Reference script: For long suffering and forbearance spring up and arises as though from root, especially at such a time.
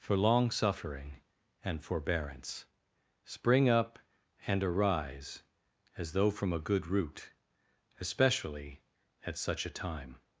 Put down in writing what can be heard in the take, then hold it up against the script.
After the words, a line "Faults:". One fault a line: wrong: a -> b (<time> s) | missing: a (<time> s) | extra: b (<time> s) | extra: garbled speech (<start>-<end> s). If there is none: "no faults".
For long suffering and forbearance spring up and arise as though from a good root, especially at such a time.
Faults:
wrong: arises -> arise (4.6 s)
extra: a good (6.5 s)